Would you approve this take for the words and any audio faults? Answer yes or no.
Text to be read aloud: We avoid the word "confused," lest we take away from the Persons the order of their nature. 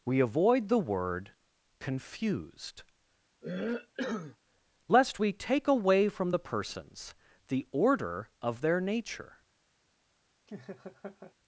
no